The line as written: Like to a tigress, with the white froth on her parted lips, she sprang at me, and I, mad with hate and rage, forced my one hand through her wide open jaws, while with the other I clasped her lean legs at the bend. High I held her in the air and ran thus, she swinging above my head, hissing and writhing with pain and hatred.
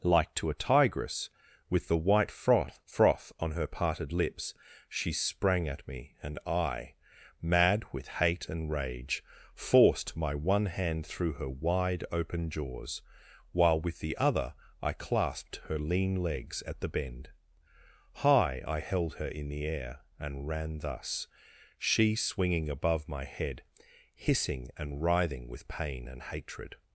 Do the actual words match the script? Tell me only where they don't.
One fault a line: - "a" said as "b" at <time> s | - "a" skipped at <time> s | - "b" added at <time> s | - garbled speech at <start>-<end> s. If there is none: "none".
- "froth" added at 2.9 s